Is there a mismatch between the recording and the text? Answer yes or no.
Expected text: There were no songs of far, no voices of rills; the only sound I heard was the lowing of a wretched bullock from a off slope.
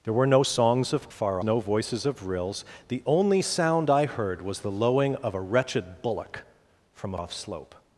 no